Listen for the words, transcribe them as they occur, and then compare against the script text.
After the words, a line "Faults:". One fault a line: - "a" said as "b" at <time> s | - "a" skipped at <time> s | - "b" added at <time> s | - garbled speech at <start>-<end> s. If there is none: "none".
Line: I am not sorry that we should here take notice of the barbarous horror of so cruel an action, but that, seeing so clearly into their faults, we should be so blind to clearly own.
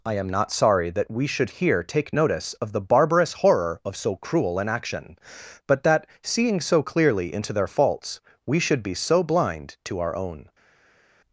I am not sorry that we should here take notice of the barbarous horror of so cruel an action, but that, seeing so clearly into their faults, we should be so blind to our own.
Faults:
- "clearly" said as "our" at 10.0 s